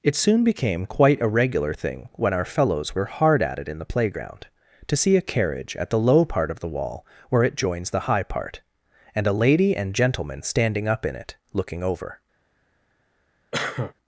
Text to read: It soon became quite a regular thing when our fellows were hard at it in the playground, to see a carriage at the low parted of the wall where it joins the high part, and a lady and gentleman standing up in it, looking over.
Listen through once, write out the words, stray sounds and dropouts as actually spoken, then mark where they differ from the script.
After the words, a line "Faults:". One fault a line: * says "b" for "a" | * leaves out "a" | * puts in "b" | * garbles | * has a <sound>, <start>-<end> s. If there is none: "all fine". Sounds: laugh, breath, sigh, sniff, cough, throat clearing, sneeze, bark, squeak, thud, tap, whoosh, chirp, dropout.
It soon became quite a regular thing when our fellows were hard at it in the playground, to see a carriage at the low part of the wall where it joins the high part, and a lady and gentleman standing up in it, looking over.
Faults:
* says "part" for "parted"
* has a cough, 13.5-13.9 s